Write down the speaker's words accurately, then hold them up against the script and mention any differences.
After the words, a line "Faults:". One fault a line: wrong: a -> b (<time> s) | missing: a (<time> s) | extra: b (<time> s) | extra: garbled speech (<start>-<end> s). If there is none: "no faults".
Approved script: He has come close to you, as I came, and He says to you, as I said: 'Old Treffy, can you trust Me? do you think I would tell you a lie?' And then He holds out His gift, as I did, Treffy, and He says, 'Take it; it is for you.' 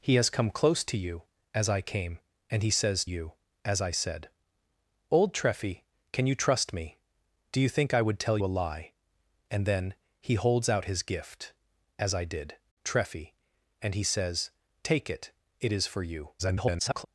He has come close to you, as I came, and He says you, as I said: 'Old Treffy, can you trust Me? do you think I would tell a lie?' And then He holds out His gift, as I did, Treffy, and He says, 'Take it; it is for you.' [garbled]
Faults:
missing: to (3.0 s)
missing: you (8.4 s)
extra: garbled speech (16.4-17.1 s)